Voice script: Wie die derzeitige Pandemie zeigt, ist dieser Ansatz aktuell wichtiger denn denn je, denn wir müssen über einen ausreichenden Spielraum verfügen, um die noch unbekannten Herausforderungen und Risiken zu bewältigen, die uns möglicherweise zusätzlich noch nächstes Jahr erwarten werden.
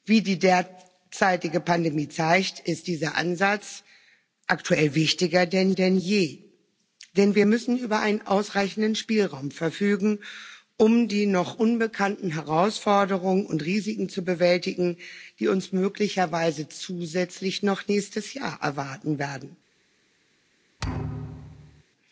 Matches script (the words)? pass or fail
pass